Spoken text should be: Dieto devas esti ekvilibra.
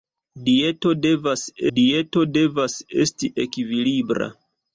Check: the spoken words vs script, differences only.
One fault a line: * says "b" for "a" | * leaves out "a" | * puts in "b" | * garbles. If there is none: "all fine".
* puts in "dieto devas"